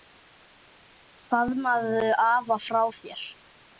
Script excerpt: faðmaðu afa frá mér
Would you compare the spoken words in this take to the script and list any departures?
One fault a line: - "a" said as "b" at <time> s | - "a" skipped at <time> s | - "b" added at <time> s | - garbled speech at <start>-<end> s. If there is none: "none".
none